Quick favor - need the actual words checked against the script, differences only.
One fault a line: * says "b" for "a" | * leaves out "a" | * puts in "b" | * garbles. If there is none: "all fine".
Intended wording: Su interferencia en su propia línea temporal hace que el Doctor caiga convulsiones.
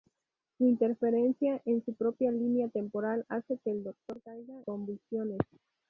all fine